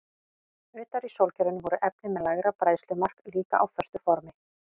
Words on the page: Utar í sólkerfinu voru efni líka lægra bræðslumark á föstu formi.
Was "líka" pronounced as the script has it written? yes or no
no